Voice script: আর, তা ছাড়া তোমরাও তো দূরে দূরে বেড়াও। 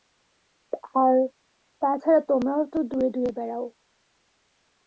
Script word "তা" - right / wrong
right